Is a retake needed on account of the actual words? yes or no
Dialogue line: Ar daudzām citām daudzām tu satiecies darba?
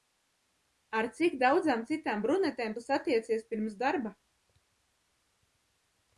yes